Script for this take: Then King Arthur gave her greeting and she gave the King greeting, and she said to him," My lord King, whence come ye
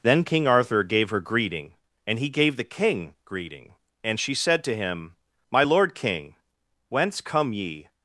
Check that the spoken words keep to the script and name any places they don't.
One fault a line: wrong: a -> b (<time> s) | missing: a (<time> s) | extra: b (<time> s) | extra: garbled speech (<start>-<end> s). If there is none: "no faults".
wrong: she -> he (2.2 s)